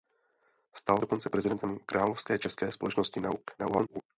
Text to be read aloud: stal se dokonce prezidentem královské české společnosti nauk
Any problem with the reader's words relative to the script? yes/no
yes